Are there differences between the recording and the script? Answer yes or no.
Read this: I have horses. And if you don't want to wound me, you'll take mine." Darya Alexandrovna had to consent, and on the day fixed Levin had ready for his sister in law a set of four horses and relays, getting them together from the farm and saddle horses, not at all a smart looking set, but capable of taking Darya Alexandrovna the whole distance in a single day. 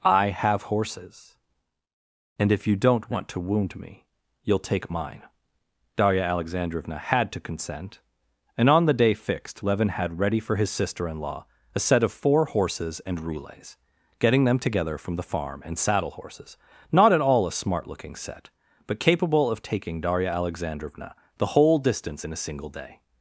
no